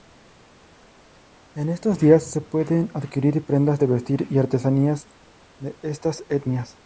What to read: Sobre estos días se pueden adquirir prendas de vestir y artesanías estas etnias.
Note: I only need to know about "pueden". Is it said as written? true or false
true